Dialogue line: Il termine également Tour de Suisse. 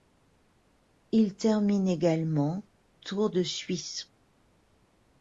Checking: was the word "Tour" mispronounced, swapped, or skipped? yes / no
no